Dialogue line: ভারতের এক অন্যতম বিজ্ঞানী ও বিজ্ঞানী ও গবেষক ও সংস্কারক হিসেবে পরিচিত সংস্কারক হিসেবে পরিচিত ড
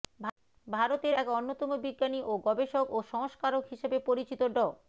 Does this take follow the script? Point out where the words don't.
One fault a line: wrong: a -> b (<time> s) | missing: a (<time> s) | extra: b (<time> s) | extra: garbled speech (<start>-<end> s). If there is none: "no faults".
missing: বিজ্ঞানী ও (2.4 s)
missing: সংস্কারক হিসেবে পরিচিত (4.4 s)